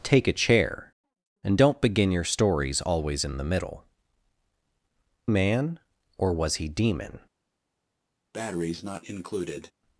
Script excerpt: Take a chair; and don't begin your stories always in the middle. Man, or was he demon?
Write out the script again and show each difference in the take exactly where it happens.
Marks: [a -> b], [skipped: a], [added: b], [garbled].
Take a chair; and don't begin your stories always in the middle. Man, or was he demon?